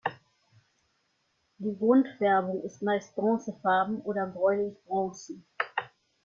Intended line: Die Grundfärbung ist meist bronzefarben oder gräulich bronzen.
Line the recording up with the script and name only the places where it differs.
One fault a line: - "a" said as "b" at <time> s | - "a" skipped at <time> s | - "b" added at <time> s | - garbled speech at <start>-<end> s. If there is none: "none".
none